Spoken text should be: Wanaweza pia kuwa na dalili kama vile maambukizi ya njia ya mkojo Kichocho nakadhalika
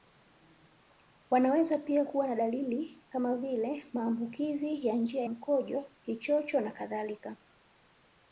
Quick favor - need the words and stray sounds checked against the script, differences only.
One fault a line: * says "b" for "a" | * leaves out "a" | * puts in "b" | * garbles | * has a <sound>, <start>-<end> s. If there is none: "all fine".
* leaves out "ya"